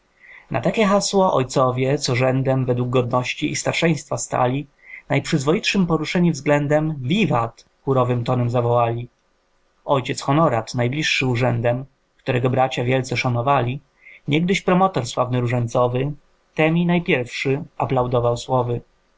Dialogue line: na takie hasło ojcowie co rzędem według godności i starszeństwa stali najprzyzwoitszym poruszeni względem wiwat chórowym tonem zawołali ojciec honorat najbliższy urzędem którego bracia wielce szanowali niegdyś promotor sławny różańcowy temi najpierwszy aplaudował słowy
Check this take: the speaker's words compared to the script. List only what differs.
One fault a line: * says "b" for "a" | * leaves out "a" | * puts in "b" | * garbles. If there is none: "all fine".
all fine